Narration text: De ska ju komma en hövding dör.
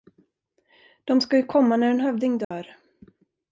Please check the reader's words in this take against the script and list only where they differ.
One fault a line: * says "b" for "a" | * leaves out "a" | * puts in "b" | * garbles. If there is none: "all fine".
* puts in "när"